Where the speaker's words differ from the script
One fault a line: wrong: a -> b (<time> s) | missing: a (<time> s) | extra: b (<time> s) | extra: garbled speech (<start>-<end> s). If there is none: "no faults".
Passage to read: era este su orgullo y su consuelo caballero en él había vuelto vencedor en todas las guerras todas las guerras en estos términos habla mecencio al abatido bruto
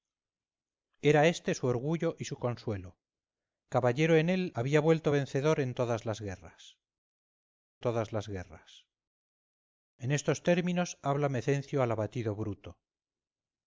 no faults